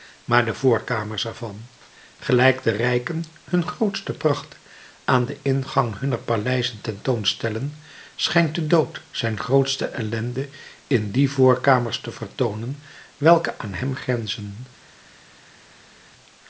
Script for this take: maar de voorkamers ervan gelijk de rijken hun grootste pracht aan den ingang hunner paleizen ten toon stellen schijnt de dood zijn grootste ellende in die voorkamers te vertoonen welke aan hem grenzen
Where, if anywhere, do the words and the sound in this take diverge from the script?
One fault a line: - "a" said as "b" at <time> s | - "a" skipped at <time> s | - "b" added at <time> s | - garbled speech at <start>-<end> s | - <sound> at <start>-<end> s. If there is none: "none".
none